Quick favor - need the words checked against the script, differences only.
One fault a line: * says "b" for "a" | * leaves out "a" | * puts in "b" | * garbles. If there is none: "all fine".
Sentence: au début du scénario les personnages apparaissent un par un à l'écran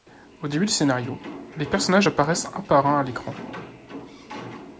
all fine